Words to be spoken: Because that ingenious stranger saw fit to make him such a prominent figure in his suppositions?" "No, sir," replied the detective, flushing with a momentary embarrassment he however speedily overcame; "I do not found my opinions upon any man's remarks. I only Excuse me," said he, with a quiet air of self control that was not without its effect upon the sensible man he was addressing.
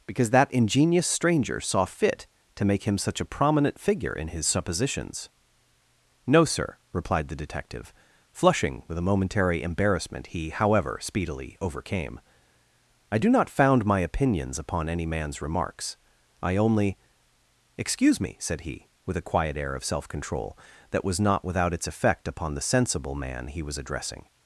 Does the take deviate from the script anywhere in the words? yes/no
no